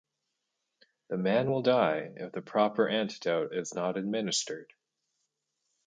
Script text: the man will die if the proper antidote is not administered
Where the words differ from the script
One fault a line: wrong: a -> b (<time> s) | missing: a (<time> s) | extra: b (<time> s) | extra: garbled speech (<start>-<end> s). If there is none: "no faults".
no faults